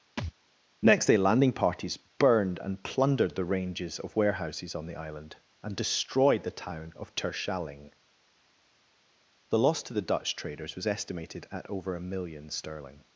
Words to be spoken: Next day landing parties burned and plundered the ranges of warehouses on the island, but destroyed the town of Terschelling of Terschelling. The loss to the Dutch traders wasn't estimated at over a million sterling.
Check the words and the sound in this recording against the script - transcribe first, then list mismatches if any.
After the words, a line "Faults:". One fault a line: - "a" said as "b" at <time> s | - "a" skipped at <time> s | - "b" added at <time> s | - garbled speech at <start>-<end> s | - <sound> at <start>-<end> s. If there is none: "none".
Next day landing parties burned and plundered the ranges of warehouses on the island, and destroyed the town of Terschelling. The loss to the Dutch traders was estimated at over a million sterling.
Faults:
- thud at 0.2-0.3 s
- "but" said as "and" at 5.6 s
- "of Terschelling" skipped at 7.9 s
- "wasn't" said as "was" at 10.7 s